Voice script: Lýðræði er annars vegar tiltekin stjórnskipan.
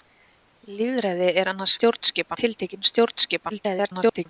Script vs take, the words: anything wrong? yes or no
yes